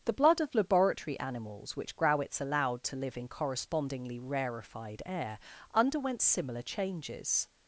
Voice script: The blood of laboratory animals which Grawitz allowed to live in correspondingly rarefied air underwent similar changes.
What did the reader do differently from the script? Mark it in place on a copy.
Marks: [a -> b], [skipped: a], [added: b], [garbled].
The blood of laboratory animals which Grawitz allowed to live in correspondingly rarefied air underwent similar changes.